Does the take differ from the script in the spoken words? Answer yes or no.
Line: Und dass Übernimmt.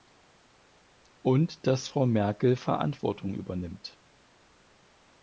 yes